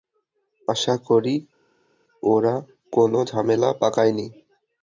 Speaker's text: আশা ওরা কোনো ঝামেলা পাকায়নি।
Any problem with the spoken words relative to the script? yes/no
yes